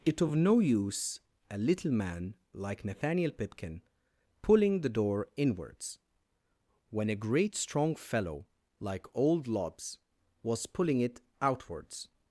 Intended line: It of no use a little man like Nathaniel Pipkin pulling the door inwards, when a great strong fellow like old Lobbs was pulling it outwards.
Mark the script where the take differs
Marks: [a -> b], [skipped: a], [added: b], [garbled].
It of no use a little man like Nathaniel Pipkin pulling the door inwards, when a great strong fellow like old Lobbs was pulling it outwards.